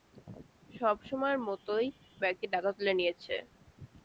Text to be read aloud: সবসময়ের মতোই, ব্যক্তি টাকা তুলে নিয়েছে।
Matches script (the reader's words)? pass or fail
pass